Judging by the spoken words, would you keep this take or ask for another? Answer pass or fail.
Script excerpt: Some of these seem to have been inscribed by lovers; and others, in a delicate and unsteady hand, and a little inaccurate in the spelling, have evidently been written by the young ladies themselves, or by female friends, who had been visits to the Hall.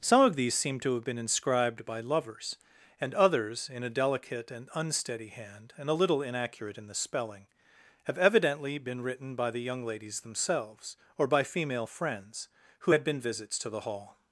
pass